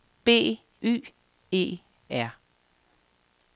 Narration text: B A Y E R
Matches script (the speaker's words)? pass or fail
fail